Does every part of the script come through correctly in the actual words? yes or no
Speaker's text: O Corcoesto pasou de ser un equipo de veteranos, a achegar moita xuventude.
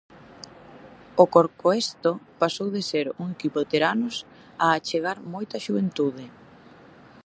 no